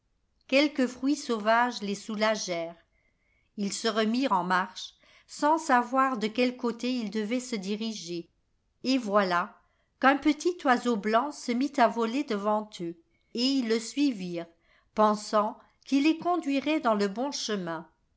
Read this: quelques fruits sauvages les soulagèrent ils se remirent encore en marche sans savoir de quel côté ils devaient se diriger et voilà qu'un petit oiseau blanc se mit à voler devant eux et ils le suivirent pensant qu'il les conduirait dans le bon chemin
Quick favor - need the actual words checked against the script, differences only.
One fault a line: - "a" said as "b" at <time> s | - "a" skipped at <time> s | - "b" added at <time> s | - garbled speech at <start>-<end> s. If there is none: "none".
- "encore" skipped at 4.3 s